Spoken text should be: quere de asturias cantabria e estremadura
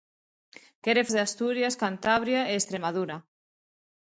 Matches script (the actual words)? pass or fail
pass